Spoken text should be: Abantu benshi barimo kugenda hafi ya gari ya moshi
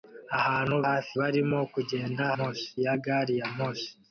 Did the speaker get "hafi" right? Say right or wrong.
wrong